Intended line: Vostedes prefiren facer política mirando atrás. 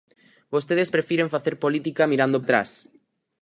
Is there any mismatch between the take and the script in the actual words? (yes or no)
no